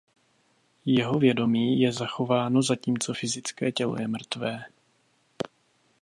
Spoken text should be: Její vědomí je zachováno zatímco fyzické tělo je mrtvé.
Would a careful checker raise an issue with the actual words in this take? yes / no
yes